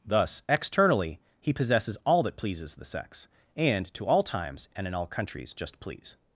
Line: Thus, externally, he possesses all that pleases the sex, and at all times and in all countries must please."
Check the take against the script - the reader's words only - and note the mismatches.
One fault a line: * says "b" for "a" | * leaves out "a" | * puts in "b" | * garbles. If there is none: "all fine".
* says "to" for "at"
* says "just" for "must"